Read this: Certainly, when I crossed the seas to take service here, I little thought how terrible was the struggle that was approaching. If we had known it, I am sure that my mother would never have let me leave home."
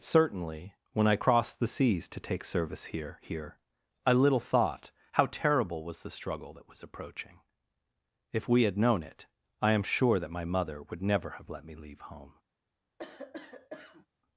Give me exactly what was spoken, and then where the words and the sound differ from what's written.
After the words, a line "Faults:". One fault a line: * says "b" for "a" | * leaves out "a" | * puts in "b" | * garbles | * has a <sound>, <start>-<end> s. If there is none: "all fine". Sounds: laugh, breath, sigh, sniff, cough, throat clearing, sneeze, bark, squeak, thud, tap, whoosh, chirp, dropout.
Certainly, when I crossed the seas to take service here here, I little thought how terrible was the struggle that was approaching. If we had known it, I am sure that my mother would never have let me leave home."
Faults:
* puts in "here"
* has a cough, 13.0-14.1 s